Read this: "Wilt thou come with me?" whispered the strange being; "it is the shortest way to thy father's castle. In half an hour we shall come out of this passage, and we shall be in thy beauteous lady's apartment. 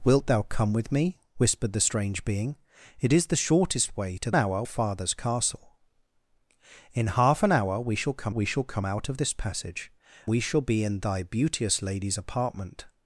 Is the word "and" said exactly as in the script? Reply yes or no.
no